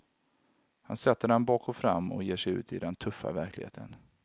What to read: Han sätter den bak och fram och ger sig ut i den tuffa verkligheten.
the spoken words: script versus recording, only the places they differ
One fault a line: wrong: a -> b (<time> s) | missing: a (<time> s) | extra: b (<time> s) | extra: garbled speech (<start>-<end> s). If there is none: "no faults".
no faults